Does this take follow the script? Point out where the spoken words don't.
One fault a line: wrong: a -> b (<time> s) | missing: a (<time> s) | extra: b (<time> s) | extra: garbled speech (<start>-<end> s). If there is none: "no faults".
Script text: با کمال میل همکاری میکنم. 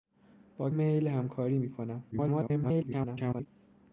missing: کمال (0.7 s)
extra: garbled speech (2.1-3.5 s)